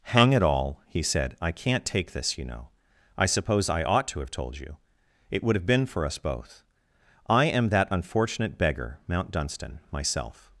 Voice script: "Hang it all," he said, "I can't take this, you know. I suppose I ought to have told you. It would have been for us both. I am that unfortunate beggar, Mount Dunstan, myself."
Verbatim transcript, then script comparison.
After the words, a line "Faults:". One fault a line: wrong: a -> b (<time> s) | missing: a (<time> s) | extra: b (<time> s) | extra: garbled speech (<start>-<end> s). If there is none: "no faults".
"Hang it all," he said, "I can't take this, you know. I suppose I ought to have told you. It would have been for us both. I am that unfortunate beggar, Mount Dunstan, myself."
Faults:
no faults